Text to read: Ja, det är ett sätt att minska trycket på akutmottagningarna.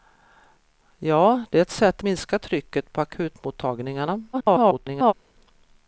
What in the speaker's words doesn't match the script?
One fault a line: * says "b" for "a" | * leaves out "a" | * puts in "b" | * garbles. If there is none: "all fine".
* leaves out "att"
* garbles